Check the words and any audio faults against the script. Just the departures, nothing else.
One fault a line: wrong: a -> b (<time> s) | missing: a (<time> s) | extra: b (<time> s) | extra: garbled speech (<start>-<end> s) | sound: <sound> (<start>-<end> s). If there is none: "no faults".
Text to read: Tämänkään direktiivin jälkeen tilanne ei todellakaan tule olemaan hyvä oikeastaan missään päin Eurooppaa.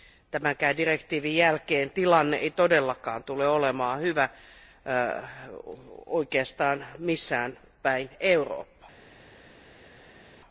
no faults